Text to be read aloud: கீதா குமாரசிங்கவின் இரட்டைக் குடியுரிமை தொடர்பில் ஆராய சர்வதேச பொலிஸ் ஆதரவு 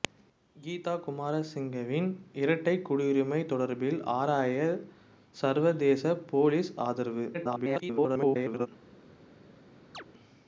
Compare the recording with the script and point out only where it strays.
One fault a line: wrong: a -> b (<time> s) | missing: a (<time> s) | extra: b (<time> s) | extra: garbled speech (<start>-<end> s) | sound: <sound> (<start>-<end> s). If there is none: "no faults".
extra: garbled speech (7.3-8.7 s)
sound: chirp (9.9-10.0 s)